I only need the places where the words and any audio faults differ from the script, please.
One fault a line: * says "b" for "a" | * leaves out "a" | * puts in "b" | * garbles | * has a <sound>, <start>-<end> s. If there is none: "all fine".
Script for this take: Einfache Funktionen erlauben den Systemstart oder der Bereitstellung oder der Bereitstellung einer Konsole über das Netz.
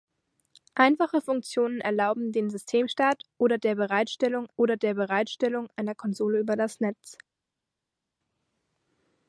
all fine